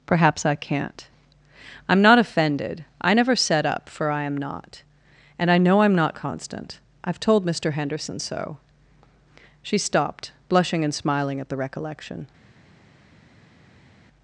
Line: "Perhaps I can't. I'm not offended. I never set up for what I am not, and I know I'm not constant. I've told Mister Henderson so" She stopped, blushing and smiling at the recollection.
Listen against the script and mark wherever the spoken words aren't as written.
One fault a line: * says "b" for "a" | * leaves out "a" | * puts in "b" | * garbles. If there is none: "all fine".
* leaves out "what"